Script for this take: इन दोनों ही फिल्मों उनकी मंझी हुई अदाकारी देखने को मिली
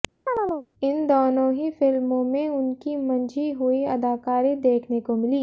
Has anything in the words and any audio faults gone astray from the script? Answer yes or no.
yes